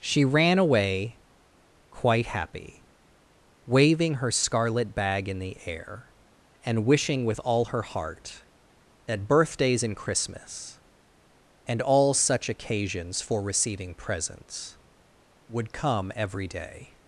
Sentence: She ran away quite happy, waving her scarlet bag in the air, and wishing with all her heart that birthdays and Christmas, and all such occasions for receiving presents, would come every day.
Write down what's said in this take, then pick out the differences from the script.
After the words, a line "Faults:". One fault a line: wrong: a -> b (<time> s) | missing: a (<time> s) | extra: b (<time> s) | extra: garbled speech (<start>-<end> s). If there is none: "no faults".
She ran away quite happy, waving her scarlet bag in the air, and wishing with all her heart that birthdays and Christmas, and all such occasions for receiving presents, would come every day.
Faults:
no faults